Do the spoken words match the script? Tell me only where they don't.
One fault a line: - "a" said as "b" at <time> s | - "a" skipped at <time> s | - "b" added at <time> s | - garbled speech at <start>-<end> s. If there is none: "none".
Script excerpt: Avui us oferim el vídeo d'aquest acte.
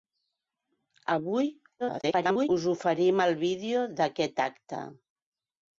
- garbled speech at 1.8-2.5 s